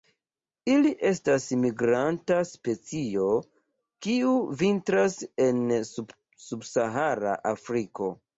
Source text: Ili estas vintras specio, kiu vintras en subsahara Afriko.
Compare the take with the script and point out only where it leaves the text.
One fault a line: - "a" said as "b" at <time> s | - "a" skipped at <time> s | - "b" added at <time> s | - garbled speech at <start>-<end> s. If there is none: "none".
- "vintras" said as "migranta" at 1.6 s